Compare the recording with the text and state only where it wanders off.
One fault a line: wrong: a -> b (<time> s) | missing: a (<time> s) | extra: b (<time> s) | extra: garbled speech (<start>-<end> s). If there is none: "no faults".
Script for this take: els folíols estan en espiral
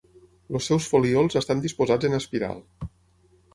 extra: seus (0.7 s)
extra: disposats (1.6 s)